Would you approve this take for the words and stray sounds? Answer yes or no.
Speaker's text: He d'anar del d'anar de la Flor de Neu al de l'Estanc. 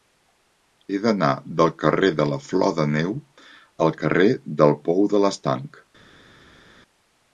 no